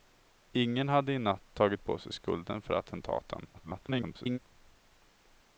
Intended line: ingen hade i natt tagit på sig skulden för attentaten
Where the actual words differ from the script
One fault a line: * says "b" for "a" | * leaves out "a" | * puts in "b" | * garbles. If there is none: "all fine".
* garbles